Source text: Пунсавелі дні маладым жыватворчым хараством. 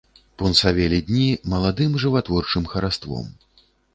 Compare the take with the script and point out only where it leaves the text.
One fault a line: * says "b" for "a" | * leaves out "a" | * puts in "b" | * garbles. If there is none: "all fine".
all fine